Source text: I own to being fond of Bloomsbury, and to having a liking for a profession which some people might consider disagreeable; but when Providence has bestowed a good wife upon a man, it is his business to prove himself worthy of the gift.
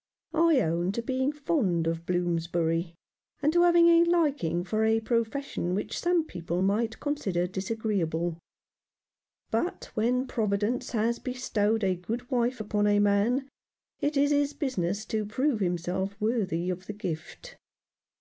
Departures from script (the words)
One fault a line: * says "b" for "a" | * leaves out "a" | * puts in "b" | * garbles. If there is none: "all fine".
all fine